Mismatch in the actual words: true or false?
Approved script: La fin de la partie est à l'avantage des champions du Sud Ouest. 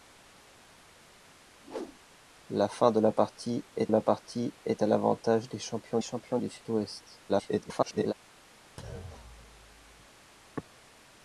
true